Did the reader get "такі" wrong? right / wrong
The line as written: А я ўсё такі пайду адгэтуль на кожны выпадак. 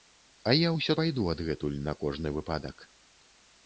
wrong